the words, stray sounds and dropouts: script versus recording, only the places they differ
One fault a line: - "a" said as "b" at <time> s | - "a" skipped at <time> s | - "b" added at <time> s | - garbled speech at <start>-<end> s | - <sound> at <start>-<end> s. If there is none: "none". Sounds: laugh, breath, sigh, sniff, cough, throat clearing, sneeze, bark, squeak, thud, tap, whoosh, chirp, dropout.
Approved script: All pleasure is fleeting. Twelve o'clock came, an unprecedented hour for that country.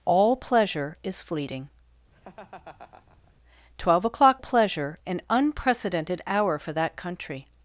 - laugh at 2.1-3.3 s
- "came" said as "pleasure" at 4.4 s